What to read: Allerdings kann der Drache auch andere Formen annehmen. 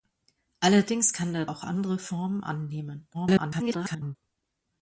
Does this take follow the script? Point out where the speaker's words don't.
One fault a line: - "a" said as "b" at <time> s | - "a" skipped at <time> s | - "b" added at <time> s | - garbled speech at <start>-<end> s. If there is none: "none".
- "Drache" skipped at 1.4 s
- garbled speech at 3.1-4.2 s